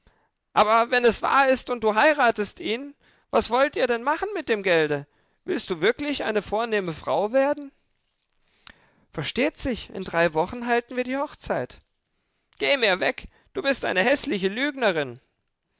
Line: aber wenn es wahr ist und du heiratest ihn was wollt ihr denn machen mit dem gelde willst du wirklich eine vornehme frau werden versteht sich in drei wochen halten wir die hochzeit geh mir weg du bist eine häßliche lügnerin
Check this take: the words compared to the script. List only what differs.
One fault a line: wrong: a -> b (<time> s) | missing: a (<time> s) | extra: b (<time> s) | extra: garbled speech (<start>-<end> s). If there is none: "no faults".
no faults